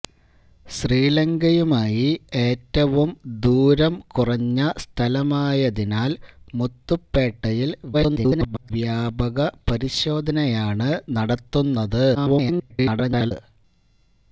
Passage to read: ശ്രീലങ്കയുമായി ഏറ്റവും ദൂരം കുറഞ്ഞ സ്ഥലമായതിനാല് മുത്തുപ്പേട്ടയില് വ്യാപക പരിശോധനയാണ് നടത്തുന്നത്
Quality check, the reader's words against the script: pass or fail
fail